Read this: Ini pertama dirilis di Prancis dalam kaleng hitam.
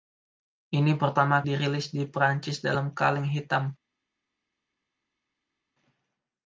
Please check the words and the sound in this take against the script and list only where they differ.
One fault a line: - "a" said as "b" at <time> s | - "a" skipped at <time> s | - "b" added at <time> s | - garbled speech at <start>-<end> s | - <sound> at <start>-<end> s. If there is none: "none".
none